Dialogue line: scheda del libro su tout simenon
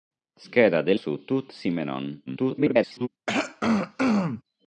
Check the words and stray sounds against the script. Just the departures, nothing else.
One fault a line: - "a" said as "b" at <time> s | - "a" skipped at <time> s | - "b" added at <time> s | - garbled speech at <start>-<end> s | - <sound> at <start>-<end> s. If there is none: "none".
- "libro" skipped at 1.0 s
- garbled speech at 2.3-3.1 s
- throat clearing at 3.3-4.4 s